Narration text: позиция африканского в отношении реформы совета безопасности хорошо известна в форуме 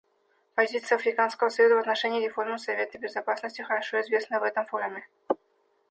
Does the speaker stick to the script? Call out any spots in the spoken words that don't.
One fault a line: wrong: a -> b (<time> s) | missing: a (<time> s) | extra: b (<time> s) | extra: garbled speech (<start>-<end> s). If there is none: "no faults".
extra: союза (1.5 s)
extra: этом (4.4 s)